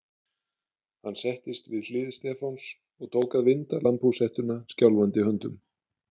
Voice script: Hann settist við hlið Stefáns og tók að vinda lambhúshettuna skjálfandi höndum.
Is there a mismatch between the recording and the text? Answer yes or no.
no